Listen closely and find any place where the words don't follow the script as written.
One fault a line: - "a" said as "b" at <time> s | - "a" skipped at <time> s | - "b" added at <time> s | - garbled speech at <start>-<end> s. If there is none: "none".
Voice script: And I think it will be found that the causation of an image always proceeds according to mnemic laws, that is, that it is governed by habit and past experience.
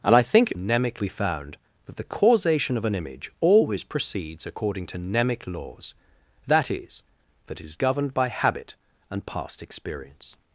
- "will" said as "mnemic" at 0.5 s
- "it" skipped at 7.6 s